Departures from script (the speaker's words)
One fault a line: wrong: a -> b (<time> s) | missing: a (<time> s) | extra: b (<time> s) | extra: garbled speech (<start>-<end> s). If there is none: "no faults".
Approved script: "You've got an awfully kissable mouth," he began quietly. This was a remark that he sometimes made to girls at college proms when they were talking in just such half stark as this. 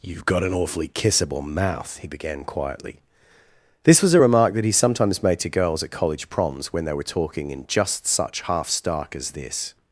no faults